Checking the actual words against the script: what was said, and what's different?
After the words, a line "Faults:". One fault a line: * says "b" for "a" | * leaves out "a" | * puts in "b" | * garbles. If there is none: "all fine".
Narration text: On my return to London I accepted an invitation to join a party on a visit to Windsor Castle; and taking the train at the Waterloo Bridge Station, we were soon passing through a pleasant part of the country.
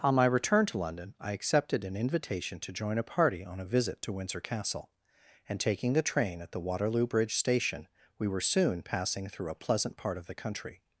On my return to London I accepted an invitation to join a party on a visit to Windsor Castle; and taking the train at the Waterloo Bridge Station, we were soon passing through a pleasant part of the country.
Faults:
all fine